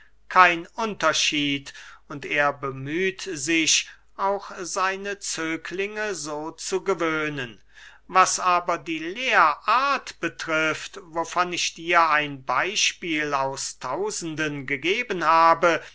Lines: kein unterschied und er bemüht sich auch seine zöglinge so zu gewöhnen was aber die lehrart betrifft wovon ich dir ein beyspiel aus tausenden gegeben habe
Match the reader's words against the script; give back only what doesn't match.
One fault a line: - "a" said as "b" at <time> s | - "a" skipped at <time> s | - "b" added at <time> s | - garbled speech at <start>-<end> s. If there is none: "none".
none